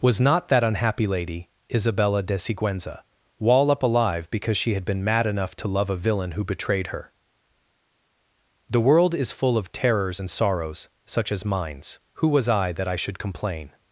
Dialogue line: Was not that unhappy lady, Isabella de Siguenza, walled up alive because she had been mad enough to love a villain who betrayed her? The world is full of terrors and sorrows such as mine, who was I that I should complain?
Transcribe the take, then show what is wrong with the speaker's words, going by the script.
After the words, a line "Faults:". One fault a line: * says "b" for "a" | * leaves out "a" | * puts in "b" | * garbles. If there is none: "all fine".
Was not that unhappy lady, Isabella de Siguenza, wall up alive because she had been mad enough to love a villain who betrayed her? The world is full of terrors and sorrows such as mines, who was I that I should complain?
Faults:
* says "wall" for "walled"
* says "mines" for "mine"